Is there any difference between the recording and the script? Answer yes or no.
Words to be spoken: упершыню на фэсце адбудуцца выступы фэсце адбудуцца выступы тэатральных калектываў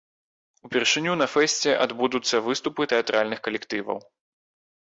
yes